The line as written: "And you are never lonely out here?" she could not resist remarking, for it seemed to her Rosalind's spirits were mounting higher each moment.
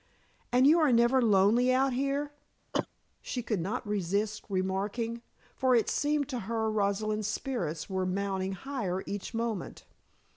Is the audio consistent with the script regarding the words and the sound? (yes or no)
no